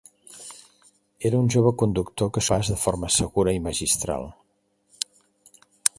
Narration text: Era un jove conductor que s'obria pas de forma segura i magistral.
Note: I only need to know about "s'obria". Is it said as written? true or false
false